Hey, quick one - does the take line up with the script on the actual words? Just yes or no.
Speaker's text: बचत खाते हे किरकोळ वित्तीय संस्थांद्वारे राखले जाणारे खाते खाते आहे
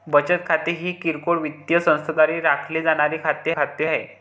yes